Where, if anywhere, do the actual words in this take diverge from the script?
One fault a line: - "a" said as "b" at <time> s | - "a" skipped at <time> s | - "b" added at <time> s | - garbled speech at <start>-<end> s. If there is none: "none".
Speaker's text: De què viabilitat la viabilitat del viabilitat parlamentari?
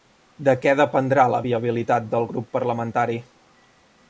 - "viabilitat" said as "dependrà" at 0.8 s
- "viabilitat" said as "grup" at 2.3 s